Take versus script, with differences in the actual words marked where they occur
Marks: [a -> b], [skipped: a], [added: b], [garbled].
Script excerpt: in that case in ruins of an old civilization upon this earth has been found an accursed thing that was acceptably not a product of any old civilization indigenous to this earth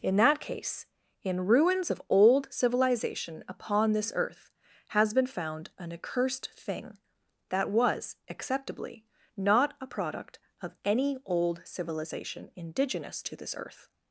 in that case in ruins of [skipped: an] old civilization upon this earth has been found an accursed thing that was acceptably not a product of any old civilization indigenous to this earth